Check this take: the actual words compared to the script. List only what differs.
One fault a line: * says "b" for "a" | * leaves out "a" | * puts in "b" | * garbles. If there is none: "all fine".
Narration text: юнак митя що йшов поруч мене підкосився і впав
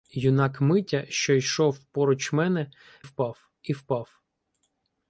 * says "впав" for "підкосився"